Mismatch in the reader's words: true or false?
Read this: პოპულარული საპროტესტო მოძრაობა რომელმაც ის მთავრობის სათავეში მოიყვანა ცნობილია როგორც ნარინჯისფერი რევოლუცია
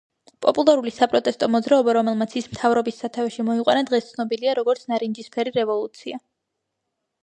true